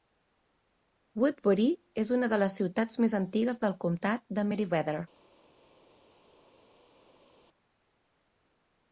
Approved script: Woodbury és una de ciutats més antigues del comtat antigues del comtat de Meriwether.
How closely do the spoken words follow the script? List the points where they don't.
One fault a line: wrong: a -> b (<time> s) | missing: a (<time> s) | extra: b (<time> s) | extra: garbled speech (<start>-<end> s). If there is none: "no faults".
extra: les (2.5 s)
missing: antigues del comtat (4.3 s)